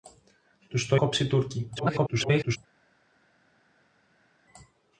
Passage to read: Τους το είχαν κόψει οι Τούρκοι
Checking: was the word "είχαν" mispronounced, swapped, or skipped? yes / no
yes